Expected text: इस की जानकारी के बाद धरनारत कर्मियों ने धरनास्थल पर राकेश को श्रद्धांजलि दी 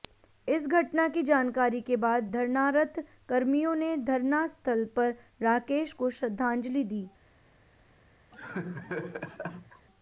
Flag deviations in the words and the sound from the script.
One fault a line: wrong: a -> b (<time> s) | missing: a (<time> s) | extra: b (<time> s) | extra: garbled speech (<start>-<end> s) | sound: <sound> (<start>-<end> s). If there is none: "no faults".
extra: घटना (0.7 s)
sound: laugh (8.3-9.9 s)